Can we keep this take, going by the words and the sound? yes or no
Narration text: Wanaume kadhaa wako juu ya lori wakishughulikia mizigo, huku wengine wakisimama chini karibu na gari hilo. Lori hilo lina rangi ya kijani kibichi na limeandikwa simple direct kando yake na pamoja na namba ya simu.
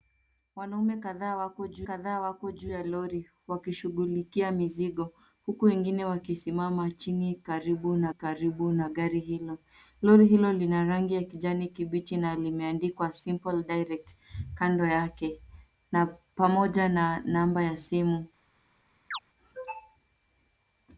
no